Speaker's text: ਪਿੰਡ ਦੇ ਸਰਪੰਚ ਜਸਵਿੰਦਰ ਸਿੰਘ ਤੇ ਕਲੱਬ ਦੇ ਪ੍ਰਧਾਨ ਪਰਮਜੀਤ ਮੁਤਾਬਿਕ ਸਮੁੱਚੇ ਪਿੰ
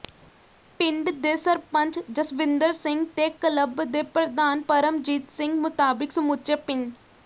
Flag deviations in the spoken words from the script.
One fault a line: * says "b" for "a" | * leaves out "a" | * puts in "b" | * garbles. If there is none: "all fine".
* puts in "ਸਿੰਘ"